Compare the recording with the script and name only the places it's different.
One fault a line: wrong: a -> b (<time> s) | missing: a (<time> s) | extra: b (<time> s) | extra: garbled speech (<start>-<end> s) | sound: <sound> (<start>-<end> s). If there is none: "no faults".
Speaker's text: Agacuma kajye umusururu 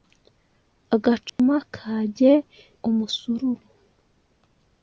sound: dropout (1.3-1.4 s)